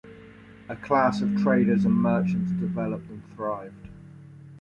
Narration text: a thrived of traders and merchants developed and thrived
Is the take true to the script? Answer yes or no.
no